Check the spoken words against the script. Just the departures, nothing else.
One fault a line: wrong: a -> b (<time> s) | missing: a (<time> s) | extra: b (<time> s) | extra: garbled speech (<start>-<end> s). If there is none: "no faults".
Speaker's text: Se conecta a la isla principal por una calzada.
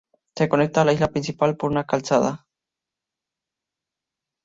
no faults